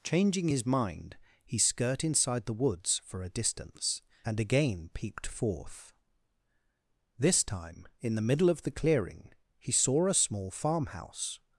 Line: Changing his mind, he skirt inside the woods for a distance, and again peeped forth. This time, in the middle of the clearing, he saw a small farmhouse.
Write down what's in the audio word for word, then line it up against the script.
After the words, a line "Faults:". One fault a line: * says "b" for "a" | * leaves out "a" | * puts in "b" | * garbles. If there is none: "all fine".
Changing his mind, he skirt inside the woods for a distance, and again peeped forth. This time, in the middle of the clearing, he saw a small farmhouse.
Faults:
all fine